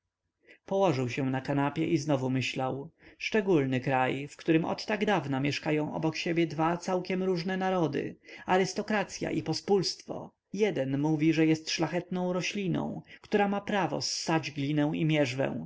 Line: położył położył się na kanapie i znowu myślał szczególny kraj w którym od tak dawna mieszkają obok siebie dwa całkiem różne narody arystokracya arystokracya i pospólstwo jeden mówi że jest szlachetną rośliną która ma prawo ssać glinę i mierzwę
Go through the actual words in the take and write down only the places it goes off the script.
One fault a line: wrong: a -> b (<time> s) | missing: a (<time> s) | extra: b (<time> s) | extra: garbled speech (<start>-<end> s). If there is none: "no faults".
missing: położył (1.1 s)
missing: arystokracya (9.3 s)